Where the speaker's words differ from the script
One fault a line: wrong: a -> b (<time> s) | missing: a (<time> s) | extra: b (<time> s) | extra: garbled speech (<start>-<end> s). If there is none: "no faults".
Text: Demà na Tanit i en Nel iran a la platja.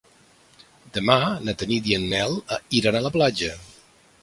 no faults